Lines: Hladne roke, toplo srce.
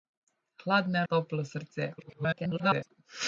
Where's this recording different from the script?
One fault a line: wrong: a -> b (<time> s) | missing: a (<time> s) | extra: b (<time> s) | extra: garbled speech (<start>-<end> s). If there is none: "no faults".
missing: roke (1.1 s)
extra: garbled speech (2.0-2.9 s)